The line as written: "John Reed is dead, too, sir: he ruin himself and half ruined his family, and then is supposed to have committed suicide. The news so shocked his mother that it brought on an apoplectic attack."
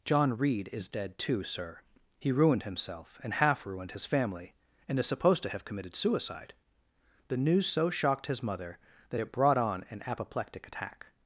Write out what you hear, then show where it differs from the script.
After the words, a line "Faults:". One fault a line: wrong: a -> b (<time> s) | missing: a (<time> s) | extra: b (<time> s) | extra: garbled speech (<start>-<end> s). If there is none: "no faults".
"John Reed is dead, too, sir: he ruined himself and half ruined his family, and is supposed to have committed suicide. The news so shocked his mother that it brought on an apoplectic attack."
Faults:
wrong: ruin -> ruined (2.3 s)
missing: then (5.0 s)